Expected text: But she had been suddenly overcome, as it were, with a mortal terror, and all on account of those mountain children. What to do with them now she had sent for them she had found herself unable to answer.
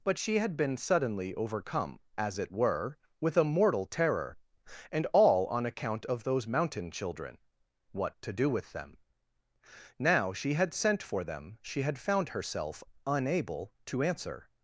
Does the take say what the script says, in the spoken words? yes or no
yes